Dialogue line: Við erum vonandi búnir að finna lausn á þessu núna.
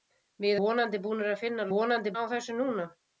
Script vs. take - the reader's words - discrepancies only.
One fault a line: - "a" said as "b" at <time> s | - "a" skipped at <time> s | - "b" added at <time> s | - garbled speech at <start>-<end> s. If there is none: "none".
- "erum" skipped at 0.6 s
- "lausn" said as "vonandi" at 1.8 s